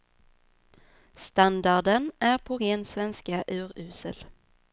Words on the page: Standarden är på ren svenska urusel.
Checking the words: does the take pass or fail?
pass